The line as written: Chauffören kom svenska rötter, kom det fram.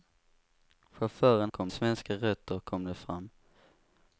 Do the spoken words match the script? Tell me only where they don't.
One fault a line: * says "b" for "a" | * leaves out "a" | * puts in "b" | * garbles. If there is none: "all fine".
all fine